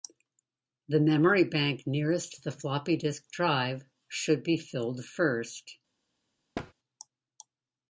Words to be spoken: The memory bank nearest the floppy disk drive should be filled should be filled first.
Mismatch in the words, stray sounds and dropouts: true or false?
true